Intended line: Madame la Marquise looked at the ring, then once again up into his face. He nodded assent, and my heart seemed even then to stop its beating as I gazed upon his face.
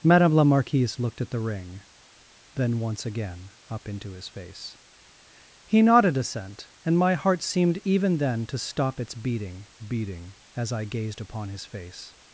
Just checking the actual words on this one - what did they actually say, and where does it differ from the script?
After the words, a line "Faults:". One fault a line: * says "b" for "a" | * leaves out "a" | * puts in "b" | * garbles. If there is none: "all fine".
Madame la Marquise looked at the ring, then once again up into his face. He nodded assent, and my heart seemed even then to stop its beating beating as I gazed upon his face.
Faults:
* puts in "beating"